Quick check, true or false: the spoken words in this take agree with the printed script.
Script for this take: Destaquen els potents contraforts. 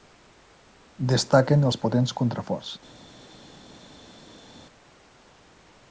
true